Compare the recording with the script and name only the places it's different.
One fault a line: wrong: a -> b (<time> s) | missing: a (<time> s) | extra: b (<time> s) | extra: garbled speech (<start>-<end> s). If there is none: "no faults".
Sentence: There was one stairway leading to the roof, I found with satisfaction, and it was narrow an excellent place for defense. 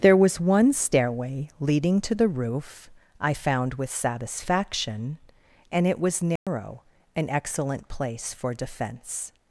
no faults